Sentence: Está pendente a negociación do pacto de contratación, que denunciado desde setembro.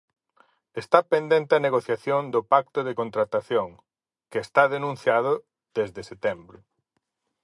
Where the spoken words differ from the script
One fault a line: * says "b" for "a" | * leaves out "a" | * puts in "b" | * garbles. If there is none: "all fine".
* puts in "está"